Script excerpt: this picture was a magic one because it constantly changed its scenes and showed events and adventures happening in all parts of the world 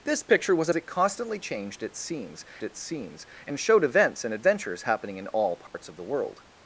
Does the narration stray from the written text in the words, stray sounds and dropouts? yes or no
yes